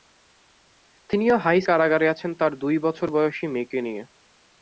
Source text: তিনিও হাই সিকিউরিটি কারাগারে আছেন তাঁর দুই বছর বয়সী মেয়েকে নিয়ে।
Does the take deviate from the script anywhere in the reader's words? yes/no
yes